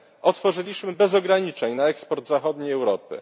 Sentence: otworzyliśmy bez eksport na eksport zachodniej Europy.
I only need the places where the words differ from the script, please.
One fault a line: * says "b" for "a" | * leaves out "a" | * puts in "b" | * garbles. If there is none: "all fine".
* says "ograniczeń" for "eksport"